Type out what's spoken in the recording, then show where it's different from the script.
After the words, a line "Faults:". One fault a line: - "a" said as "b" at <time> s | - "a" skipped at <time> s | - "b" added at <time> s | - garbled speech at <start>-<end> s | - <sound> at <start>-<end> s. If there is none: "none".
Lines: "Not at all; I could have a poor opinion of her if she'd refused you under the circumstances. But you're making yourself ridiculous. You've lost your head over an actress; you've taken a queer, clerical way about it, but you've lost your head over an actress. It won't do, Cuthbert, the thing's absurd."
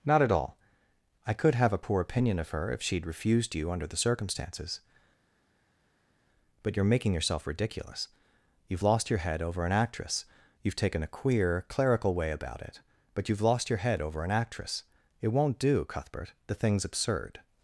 "Not at all; I could have a poor opinion of her if she'd refused you under the circumstances. But you're making yourself ridiculous. You've lost your head over an actress; you've taken a queer, clerical way about it, but you've lost your head over an actress. It won't do, Cuthbert, the thing's absurd."
Faults:
none